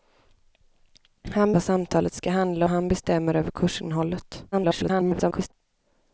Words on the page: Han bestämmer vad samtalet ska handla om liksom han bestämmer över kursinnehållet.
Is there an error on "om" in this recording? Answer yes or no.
yes